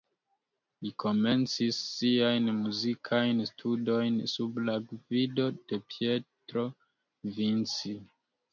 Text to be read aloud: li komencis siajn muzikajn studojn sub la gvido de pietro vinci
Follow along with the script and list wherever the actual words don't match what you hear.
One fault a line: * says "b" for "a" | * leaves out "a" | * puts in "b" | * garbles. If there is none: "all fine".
all fine